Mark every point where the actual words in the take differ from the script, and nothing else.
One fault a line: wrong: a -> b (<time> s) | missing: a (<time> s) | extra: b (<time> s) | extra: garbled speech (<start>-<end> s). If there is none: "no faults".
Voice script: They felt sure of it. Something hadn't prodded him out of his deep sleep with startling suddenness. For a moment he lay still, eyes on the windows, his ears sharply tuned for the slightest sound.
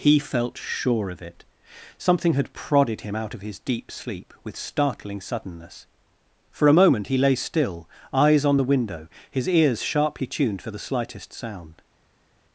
wrong: They -> He (0.0 s)
wrong: hadn't -> had (2.3 s)
wrong: windows -> window (8.7 s)